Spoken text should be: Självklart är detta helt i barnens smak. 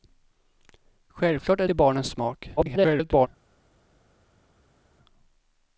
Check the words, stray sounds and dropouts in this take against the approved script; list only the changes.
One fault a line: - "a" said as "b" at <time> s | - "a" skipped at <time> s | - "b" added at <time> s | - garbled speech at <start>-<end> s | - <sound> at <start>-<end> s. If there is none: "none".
- "detta helt" skipped at 1.7 s
- garbled speech at 2.6-3.3 s